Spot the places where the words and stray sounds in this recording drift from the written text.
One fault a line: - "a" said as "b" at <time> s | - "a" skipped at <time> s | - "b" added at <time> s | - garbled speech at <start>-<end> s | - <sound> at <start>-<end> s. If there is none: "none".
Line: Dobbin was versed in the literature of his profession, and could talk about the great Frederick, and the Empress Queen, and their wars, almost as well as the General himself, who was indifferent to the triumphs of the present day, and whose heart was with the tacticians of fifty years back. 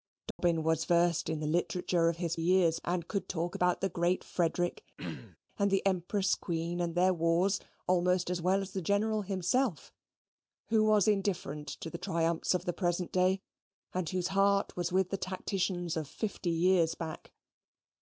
- dropout at 0.3-0.4 s
- "profession" said as "years" at 2.3 s
- throat clearing at 5.0-5.4 s